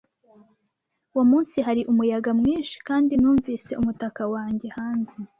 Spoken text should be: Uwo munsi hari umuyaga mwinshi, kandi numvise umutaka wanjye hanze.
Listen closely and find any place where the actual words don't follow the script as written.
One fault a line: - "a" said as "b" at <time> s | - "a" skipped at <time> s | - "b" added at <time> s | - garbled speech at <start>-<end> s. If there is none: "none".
none